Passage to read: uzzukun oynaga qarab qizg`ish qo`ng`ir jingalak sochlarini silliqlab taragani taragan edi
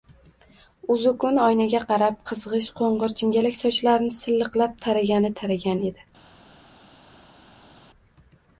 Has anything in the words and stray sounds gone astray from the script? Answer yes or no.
no